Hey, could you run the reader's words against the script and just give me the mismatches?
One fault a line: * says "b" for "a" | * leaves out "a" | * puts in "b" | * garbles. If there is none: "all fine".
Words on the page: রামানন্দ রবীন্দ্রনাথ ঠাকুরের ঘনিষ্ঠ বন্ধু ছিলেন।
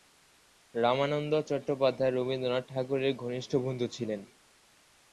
* puts in "চট্টোপাধ্যায়"